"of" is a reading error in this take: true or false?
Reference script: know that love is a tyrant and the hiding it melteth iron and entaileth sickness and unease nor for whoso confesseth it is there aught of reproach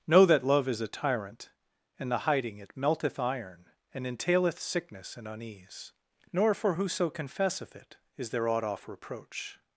true